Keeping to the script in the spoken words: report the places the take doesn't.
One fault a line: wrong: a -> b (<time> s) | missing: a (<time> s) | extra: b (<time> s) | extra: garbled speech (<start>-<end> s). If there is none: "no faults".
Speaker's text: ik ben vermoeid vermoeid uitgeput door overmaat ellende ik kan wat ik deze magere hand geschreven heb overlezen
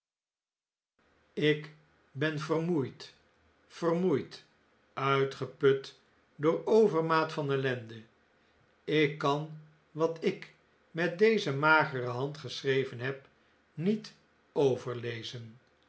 extra: van (7.3 s)
extra: met (10.9 s)
extra: niet (13.7 s)